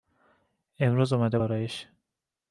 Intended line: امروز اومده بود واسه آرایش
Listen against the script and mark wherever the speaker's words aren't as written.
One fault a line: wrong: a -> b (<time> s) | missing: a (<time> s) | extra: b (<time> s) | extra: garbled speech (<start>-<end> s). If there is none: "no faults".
missing: بود واسه (1.4 s)